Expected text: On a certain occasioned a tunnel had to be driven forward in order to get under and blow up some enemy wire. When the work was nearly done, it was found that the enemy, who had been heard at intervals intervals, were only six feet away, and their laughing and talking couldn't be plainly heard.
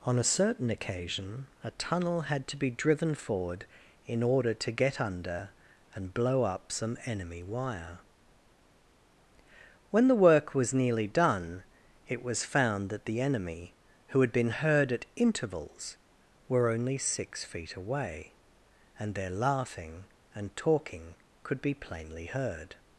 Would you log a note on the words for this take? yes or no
yes